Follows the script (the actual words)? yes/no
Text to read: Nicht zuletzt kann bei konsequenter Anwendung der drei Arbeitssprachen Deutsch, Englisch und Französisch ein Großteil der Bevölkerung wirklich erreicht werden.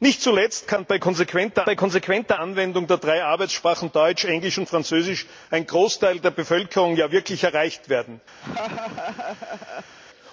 no